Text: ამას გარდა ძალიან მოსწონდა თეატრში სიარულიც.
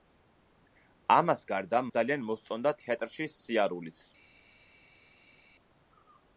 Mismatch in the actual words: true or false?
false